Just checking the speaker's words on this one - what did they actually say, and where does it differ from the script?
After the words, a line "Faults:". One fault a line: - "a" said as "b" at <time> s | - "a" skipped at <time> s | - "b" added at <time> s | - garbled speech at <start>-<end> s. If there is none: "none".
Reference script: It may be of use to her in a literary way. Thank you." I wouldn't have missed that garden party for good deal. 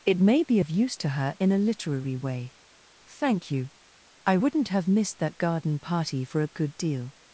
It may be of use to her in a literary way. Thank you." I wouldn't have missed that garden party for a good deal.
Faults:
- "a" added at 6.4 s